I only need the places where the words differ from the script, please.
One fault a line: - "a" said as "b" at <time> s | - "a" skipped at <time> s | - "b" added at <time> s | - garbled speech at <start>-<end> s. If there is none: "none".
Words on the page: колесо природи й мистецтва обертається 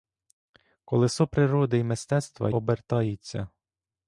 none